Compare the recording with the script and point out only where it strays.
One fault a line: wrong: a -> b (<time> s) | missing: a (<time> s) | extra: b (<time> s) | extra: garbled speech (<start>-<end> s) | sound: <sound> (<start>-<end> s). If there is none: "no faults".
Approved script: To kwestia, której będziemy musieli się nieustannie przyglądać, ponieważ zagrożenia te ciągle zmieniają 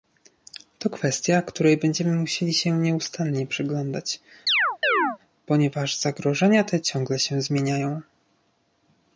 sound: chirp (4.5-5.2 s)
extra: się (7.2 s)